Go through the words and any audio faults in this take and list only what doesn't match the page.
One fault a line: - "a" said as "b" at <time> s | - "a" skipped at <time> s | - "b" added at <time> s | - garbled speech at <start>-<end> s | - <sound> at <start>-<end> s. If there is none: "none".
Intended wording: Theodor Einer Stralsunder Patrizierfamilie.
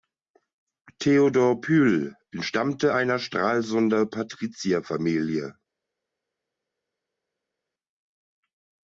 - "Pyl entstammte" added at 1.6 s